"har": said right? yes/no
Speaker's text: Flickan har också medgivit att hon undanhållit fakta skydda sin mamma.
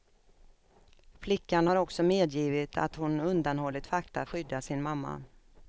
yes